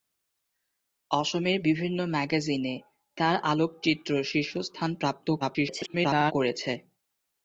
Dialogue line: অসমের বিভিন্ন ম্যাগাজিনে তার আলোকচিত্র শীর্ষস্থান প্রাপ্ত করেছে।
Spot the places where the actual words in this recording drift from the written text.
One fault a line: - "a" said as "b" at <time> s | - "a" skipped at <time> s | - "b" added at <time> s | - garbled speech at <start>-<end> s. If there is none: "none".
- garbled speech at 5.4-6.3 s